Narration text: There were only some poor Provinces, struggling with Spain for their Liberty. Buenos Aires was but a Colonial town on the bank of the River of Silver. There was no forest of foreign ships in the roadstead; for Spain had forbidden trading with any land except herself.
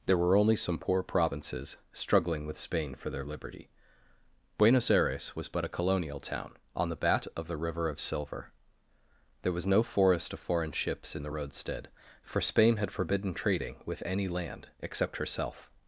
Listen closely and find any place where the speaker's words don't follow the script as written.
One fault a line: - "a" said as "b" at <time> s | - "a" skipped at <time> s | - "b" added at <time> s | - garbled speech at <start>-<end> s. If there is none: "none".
- "bank" said as "bat" at 7.0 s